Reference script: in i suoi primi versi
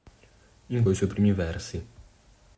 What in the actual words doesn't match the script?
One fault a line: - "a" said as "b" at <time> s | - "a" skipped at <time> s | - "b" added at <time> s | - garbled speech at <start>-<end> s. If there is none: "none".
none